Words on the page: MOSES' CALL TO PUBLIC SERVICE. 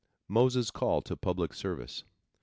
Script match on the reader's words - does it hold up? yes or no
yes